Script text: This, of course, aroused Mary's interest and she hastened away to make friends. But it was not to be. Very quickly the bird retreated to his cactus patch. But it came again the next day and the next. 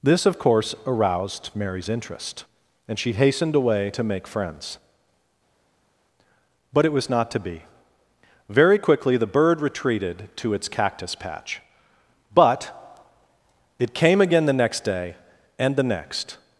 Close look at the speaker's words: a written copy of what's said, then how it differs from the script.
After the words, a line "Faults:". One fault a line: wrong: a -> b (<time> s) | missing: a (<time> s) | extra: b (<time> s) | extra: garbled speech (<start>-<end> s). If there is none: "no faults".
This, of course, aroused Mary's interest and she hastened away to make friends. But it was not to be. Very quickly the bird retreated to its cactus patch. But it came again the next day and the next.
Faults:
wrong: his -> its (10.5 s)